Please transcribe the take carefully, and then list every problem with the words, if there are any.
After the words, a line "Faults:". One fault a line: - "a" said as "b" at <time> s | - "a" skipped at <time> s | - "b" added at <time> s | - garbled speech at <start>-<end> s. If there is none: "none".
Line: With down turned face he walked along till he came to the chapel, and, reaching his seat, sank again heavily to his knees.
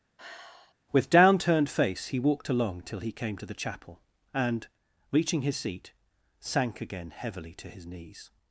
With down turned face he walked along till he came to the chapel, and, reaching his seat, sank again heavily to his knees.
Faults:
none